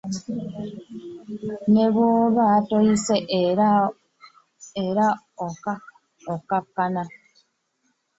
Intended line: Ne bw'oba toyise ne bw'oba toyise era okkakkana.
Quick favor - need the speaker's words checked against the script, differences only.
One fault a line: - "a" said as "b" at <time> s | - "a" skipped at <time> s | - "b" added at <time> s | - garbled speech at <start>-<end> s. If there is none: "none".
- "ne bw'oba toyise" skipped at 3.2 s